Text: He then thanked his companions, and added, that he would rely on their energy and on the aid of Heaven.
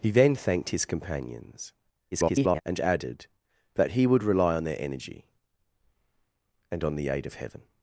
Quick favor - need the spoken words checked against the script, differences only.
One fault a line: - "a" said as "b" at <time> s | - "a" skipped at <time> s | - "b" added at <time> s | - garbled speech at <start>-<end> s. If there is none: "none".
- garbled speech at 2.1-2.6 s